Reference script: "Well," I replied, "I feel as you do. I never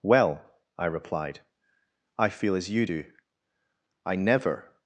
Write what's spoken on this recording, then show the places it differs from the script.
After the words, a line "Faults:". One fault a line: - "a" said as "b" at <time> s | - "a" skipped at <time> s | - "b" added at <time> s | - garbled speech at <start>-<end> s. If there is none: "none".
"Well," I replied, "I feel as you do. I never
Faults:
none